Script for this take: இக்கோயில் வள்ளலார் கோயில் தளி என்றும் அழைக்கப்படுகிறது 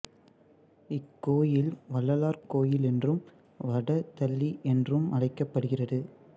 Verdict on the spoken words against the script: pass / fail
fail